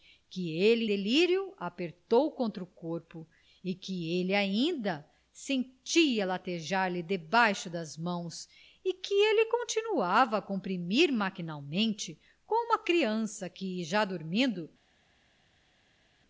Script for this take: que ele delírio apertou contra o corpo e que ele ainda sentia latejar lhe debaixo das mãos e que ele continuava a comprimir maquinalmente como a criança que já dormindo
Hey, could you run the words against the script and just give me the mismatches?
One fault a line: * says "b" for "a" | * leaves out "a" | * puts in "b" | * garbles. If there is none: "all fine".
all fine